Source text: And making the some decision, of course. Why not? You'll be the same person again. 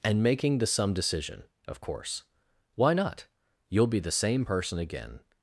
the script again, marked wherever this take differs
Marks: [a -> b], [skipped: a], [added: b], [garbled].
And making the some decision, of course. Why not? You'll be the same person again.